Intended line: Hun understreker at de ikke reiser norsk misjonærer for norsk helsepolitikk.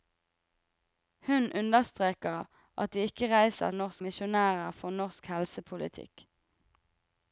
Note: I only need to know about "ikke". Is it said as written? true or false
true